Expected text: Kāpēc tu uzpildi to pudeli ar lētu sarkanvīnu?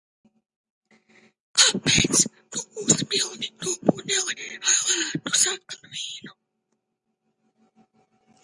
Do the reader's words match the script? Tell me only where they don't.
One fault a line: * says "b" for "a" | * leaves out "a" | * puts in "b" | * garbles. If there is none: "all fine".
all fine